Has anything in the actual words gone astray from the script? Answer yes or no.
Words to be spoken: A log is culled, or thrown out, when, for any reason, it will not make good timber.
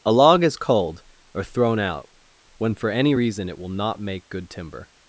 no